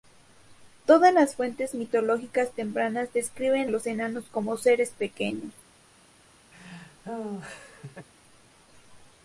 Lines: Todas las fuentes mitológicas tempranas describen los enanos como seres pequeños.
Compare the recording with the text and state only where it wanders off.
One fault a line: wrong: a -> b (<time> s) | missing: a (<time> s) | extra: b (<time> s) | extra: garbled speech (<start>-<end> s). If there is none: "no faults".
no faults